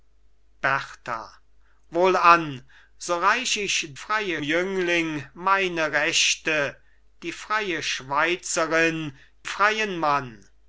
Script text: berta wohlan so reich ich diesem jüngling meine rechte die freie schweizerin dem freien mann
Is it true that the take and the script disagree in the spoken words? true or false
true